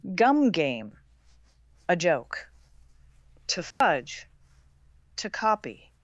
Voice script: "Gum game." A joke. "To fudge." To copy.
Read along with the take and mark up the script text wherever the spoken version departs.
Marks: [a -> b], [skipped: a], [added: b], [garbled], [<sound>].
"Gum game." A joke. "To fudge." [dropout] To copy.